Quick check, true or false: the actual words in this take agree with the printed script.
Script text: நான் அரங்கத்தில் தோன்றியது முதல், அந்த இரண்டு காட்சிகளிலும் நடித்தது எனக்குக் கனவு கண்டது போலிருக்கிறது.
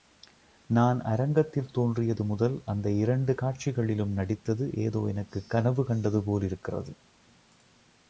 false